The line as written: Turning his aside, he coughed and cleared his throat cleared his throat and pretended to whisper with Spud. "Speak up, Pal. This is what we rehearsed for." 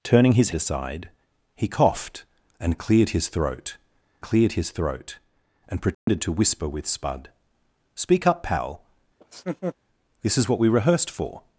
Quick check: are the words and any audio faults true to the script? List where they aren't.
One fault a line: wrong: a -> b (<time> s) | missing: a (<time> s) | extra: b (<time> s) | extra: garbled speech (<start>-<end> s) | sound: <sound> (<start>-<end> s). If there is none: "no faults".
sound: dropout (5.9-6.1 s)
sound: laugh (9.2-9.8 s)